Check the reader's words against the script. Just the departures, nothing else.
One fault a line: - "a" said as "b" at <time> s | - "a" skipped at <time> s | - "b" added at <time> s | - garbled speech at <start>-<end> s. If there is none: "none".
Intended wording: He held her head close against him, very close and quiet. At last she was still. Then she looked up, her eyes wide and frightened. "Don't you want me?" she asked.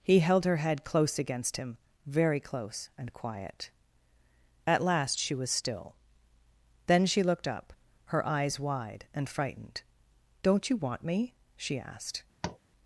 none